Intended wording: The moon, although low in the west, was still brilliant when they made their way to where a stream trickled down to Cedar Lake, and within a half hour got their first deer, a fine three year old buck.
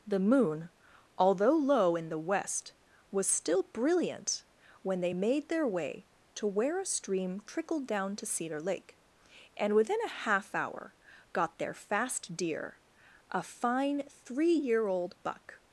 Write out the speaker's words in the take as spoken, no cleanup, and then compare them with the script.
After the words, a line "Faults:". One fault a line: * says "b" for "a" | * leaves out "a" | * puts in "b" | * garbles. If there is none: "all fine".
The moon, although low in the west, was still brilliant when they made their way to where a stream trickled down to Cedar Lake, and within a half hour got their fast deer, a fine three year old buck.
Faults:
* says "fast" for "first"